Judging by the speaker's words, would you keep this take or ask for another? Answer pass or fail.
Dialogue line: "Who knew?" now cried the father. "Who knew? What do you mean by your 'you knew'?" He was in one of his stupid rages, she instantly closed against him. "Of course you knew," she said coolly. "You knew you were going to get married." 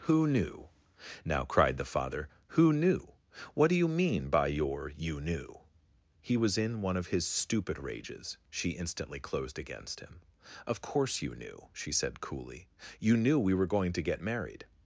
fail